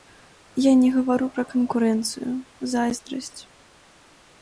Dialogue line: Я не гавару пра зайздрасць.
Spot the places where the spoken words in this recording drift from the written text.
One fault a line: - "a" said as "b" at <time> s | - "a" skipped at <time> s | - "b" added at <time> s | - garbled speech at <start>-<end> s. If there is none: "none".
- "канкурэнцыю" added at 1.5 s